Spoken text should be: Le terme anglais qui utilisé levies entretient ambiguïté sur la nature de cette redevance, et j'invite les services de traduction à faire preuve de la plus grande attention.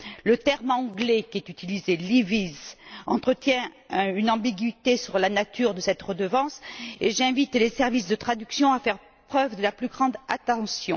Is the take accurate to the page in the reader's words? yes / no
no